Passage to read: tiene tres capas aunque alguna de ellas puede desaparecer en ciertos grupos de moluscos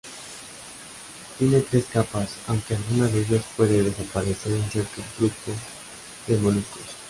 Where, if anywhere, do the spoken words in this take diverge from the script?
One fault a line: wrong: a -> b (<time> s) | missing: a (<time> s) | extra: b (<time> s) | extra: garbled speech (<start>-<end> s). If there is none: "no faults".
no faults